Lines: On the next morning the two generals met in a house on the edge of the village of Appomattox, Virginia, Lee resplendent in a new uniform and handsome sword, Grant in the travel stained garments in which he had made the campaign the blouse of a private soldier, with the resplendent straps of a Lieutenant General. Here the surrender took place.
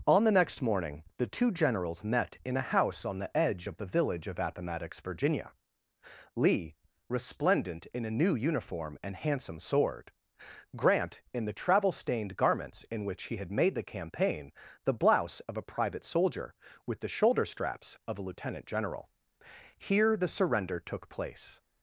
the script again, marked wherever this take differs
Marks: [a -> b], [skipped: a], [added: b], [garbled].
On the next morning the two generals met in a house on the edge of the village of Appomattox, Virginia, Lee resplendent in a new uniform and handsome sword, Grant in the travel stained garments in which he had made the campaign the blouse of a private soldier, with the [resplendent -> shoulder] straps of a Lieutenant General. Here the surrender took place.